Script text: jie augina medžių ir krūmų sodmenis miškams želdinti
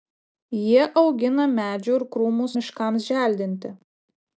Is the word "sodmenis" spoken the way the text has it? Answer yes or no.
no